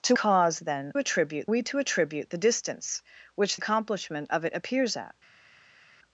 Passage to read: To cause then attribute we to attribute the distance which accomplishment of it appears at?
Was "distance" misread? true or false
false